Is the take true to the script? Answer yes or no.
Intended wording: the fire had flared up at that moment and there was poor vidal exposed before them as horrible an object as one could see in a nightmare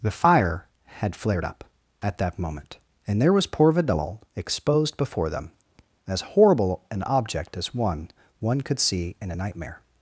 no